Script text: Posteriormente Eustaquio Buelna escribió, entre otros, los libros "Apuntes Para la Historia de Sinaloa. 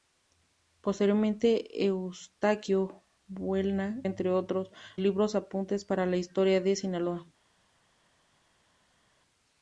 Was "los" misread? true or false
true